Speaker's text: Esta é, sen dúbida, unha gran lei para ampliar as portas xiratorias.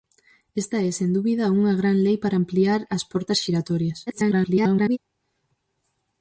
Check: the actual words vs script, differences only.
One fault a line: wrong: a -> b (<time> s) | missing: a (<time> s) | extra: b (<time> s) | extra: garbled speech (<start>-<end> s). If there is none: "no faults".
extra: garbled speech (4.1-5.0 s)